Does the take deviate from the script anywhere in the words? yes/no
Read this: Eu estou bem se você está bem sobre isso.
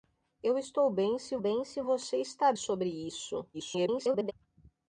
yes